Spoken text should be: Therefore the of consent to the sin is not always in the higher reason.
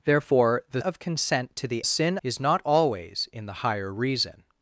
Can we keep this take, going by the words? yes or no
yes